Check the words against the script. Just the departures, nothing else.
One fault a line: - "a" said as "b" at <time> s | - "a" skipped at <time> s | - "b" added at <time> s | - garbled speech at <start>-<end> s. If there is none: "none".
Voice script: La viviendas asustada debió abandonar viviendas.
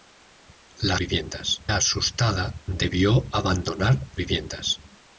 none